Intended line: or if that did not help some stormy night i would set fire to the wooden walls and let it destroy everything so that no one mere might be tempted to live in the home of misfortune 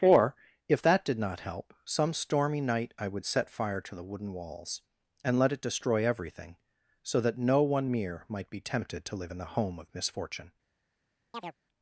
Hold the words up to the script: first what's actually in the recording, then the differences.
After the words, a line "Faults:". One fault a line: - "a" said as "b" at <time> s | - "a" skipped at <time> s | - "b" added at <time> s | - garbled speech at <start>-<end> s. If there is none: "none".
or if that did not help some stormy night i would set fire to the wooden walls and let it destroy everything so that no one mere might be tempted to live in the home of misfortune
Faults:
none